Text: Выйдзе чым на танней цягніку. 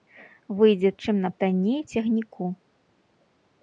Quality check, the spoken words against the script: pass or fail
pass